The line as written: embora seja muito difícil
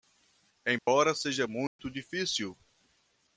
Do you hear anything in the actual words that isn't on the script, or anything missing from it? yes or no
no